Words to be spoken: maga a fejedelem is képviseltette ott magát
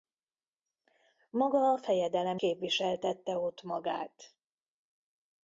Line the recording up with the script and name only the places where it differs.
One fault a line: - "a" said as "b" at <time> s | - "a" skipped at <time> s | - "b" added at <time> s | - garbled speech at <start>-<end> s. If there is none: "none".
- "is" skipped at 2.4 s